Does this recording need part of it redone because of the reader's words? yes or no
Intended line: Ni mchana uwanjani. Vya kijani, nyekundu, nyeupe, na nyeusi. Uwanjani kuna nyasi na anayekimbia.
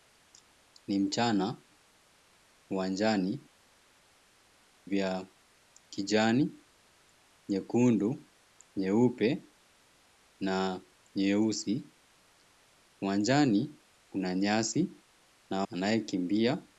no